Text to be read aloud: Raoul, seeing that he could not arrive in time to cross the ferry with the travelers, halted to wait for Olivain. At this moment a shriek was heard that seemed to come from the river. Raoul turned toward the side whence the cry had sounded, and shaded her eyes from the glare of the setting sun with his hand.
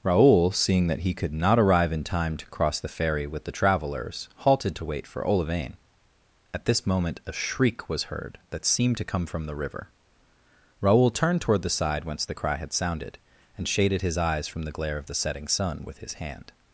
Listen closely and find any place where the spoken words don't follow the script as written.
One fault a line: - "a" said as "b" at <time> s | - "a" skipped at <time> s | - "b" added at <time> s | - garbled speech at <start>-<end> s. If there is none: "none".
- "her" said as "his" at 14.0 s